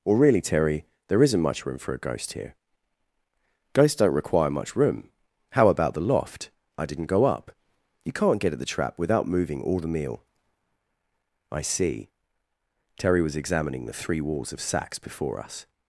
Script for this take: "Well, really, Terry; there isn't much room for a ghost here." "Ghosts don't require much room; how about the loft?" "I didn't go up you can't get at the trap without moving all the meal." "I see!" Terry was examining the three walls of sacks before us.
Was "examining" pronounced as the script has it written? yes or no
yes